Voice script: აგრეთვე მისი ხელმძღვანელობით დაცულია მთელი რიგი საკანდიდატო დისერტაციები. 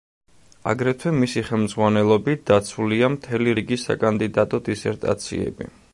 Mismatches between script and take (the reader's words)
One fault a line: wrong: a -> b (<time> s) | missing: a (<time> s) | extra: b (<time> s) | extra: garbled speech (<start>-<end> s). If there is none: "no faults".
no faults